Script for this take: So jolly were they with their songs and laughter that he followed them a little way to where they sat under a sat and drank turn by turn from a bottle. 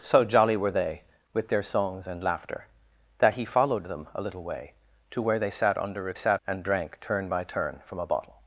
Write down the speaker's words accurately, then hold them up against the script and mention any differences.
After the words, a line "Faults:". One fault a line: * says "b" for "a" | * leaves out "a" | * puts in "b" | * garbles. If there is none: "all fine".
So jolly were they with their songs and laughter that he followed them a little way to where they sat under a sat and drank turn by turn from a bottle.
Faults:
all fine